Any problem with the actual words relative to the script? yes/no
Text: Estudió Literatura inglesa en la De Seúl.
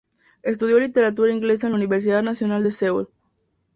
yes